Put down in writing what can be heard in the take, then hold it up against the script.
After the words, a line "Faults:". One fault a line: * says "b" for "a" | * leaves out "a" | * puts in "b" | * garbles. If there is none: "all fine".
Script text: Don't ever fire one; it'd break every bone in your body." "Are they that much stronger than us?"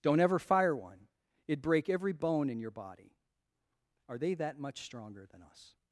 Don't ever fire one; it'd break every bone in your body." "Are they that much stronger than us?"
Faults:
all fine